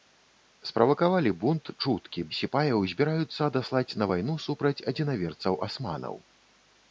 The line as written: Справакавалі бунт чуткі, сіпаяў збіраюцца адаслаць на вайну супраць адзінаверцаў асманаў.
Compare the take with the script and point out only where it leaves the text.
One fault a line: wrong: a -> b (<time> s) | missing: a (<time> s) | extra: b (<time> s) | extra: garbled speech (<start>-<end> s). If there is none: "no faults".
no faults